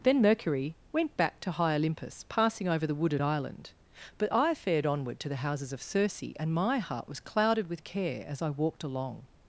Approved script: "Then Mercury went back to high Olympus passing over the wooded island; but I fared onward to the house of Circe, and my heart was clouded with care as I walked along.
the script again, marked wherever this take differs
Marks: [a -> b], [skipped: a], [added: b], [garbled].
"Then Mercury went back to high Olympus passing over the wooded island; but I fared onward to the [house -> houses] of Circe, and my heart was clouded with care as I walked along.